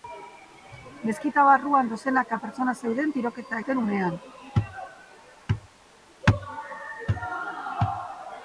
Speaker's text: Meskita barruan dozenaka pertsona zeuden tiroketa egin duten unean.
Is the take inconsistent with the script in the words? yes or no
yes